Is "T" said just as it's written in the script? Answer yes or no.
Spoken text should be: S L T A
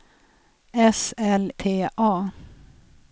yes